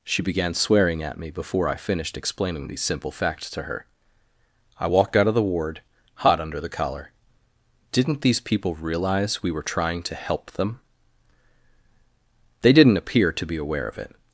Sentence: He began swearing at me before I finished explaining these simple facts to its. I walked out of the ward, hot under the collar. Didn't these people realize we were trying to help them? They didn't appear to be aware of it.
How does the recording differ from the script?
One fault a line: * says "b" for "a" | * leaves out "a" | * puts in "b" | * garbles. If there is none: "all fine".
* says "She" for "He"
* says "her" for "its"